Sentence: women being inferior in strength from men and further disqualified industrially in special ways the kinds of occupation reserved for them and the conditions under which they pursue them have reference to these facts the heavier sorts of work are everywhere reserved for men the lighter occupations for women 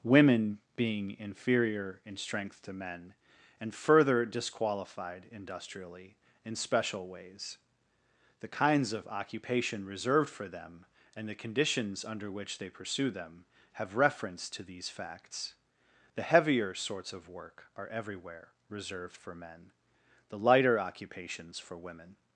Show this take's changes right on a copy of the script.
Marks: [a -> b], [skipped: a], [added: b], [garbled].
women being inferior in strength [from -> to] men and further disqualified industrially in special ways the kinds of occupation reserved for them and the conditions under which they pursue them have reference to these facts the heavier sorts of work are everywhere reserved for men the lighter occupations for women